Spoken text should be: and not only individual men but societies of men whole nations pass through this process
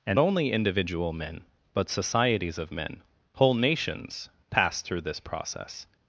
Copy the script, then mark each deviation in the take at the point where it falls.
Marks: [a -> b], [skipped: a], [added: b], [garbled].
and [skipped: not] only individual men but societies of men whole nations pass through this process